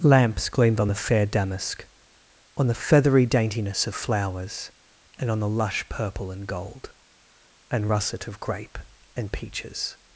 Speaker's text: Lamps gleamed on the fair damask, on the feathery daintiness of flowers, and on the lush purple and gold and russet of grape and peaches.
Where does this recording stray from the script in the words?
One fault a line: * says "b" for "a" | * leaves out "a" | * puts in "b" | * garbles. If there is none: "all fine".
all fine